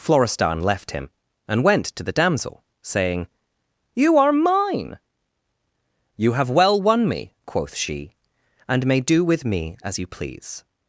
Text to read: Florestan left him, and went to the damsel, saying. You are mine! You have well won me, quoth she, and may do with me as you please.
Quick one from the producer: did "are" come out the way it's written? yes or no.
yes